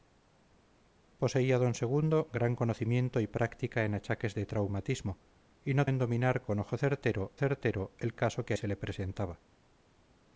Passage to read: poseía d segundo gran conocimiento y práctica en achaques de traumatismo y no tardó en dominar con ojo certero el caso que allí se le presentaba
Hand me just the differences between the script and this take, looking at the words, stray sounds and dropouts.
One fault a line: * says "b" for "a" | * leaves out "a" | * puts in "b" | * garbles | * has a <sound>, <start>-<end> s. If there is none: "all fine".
* leaves out "tardó"
* puts in "certero"
* leaves out "allí"